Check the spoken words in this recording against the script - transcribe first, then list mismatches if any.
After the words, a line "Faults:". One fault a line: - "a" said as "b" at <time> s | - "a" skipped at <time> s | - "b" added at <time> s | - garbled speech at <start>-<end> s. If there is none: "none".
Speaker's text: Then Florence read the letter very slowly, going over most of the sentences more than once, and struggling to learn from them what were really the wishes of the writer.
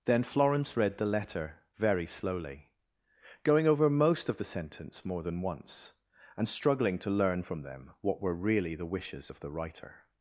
Then Florence read the letter very slowly, going over most of the sentence more than once, and struggling to learn from them what were really the wishes of the writer.
Faults:
- "sentences" said as "sentence" at 4.4 s